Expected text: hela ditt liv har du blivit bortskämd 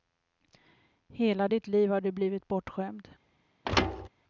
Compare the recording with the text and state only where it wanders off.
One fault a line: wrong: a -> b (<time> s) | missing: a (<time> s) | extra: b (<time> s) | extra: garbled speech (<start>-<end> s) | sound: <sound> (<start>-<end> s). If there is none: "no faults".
sound: thud (3.6-4.1 s)